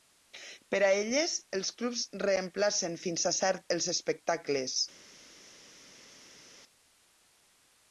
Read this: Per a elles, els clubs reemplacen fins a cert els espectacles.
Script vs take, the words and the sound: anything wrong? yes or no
no